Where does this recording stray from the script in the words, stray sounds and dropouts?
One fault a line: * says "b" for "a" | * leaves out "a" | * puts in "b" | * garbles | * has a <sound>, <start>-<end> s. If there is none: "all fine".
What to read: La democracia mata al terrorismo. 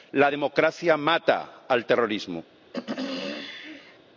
* has a throat clearing, 2.7-4.0 s